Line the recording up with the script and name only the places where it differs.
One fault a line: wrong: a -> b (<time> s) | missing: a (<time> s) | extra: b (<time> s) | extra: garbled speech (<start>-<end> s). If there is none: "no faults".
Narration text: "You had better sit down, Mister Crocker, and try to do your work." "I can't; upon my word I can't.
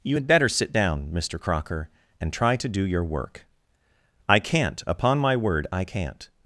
no faults